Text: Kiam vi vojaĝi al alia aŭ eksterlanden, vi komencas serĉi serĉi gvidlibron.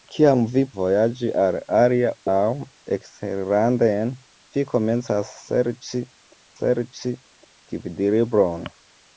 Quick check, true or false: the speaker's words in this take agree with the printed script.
true